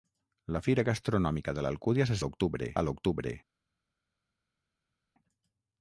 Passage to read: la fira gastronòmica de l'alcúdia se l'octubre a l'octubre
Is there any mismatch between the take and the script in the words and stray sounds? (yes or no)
no